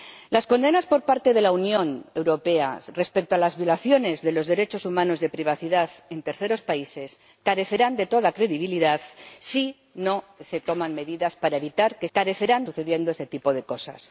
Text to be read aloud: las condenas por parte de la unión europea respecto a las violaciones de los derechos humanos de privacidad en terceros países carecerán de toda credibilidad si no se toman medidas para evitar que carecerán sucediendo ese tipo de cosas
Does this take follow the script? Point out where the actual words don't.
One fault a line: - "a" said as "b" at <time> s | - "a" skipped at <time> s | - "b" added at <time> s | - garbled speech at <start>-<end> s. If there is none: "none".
none